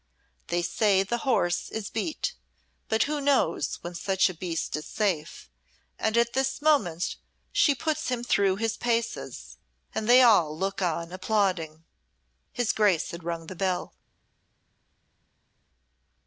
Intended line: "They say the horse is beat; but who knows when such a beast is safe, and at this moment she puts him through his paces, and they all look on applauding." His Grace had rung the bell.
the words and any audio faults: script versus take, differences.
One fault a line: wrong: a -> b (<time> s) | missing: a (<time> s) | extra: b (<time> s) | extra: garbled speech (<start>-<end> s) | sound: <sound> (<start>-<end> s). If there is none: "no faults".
no faults